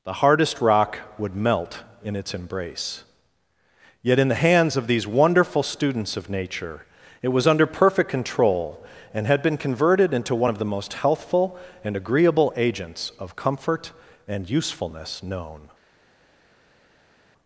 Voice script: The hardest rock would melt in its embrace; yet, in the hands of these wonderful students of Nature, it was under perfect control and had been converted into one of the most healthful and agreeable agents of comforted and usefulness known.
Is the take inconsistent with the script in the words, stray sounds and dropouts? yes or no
yes